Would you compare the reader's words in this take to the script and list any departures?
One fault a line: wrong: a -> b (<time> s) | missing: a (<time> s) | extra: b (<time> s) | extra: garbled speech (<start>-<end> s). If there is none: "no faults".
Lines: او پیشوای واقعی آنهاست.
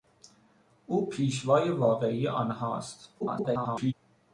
extra: garbled speech (3.2-3.9 s)